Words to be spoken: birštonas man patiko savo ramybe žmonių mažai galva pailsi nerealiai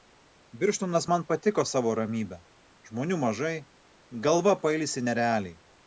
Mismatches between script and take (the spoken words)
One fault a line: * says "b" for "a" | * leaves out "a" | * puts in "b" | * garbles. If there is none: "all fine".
all fine